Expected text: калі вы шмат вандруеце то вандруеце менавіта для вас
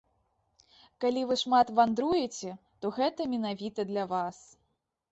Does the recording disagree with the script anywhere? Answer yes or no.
yes